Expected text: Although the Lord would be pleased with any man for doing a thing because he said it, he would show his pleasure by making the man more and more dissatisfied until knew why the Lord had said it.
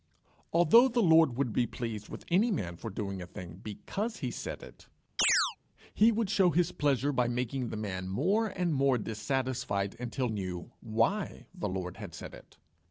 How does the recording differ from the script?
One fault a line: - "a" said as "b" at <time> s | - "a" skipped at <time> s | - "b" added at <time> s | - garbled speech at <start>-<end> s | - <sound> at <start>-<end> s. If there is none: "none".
- chirp at 5.2-5.6 s